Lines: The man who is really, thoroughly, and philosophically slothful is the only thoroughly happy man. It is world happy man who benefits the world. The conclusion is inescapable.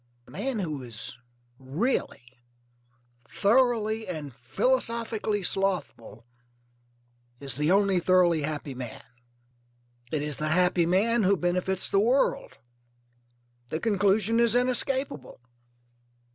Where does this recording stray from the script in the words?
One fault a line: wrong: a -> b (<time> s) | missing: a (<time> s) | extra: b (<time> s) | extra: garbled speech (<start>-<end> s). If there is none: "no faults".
wrong: world -> the (10.4 s)